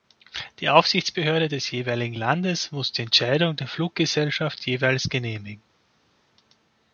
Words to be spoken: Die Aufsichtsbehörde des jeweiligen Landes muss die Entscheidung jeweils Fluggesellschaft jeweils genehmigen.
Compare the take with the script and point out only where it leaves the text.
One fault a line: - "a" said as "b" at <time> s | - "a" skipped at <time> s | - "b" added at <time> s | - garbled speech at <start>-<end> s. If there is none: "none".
- "jeweils" said as "der" at 3.5 s